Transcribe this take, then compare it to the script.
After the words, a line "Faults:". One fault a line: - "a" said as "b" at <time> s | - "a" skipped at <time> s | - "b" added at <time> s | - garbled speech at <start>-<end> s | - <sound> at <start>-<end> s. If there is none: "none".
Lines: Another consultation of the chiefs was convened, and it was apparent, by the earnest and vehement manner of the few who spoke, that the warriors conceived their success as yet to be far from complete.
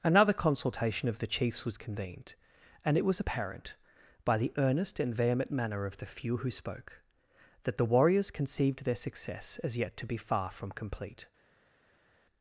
Another consultation of the chiefs was convened, and it was apparent, by the earnest and vehement manner of the few who spoke, that the warriors conceived their success as yet to be far from complete.
Faults:
none